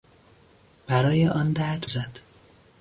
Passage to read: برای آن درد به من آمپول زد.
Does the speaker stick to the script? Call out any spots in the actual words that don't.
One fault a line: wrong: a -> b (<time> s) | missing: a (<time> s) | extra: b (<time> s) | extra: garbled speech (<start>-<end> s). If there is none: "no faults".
missing: به من آمپول (1.9 s)